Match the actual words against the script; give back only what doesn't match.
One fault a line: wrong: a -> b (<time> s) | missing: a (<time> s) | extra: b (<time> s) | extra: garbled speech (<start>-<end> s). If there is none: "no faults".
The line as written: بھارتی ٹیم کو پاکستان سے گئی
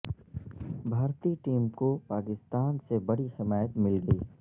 extra: بڑی حمایت مل (3.0 s)